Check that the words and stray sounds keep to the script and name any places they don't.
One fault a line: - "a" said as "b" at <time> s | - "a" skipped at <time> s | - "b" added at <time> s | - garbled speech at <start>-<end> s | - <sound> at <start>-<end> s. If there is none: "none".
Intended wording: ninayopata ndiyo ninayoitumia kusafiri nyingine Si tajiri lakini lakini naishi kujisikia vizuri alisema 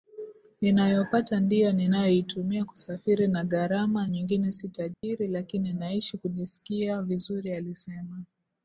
- "na gharama" added at 3.3 s
- dropout at 4.9-5.0 s
- "lakini" skipped at 5.7 s